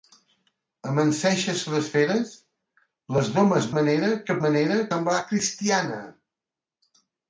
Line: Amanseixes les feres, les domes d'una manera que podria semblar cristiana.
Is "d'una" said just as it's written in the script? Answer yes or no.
no